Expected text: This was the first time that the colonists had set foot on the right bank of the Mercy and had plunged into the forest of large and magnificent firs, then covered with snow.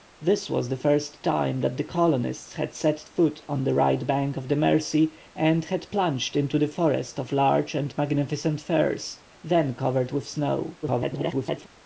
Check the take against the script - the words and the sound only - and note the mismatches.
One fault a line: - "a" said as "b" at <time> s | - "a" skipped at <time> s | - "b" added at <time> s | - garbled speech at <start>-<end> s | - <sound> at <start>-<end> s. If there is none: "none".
- garbled speech at 10.8-11.7 s